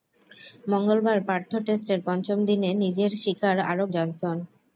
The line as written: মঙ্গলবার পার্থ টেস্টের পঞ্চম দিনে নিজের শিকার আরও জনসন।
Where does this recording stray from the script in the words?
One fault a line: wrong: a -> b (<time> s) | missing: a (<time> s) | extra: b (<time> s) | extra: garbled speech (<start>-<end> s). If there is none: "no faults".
no faults